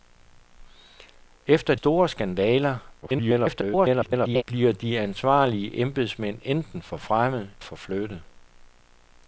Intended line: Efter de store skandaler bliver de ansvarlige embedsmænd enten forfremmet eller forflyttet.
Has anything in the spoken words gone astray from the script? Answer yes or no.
yes